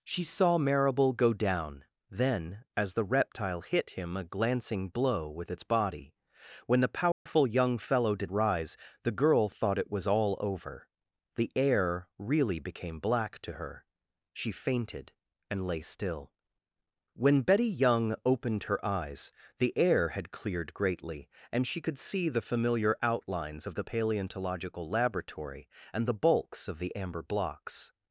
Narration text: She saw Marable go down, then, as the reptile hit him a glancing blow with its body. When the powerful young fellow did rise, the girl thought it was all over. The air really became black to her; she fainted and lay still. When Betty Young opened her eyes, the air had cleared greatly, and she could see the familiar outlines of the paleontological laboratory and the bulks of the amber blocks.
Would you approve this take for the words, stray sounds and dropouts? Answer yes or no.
no